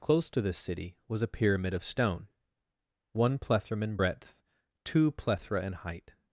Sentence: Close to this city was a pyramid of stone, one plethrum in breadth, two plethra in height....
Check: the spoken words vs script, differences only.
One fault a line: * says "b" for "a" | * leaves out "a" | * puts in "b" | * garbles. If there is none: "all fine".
all fine